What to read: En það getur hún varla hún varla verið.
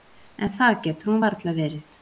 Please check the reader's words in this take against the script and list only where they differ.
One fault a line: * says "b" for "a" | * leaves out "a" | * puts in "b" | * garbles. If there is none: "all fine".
* leaves out "hún varla"